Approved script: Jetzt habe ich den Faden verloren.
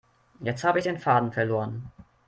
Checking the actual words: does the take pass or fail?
pass